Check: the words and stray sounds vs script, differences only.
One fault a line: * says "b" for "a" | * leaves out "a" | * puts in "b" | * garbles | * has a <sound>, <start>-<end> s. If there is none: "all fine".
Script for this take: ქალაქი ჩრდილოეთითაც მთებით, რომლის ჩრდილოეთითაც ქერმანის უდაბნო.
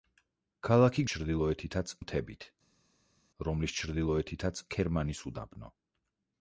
all fine